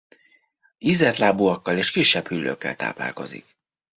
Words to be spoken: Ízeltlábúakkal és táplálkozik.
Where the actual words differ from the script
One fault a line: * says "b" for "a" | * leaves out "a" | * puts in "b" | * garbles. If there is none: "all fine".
* puts in "kisebb hüllőkkel"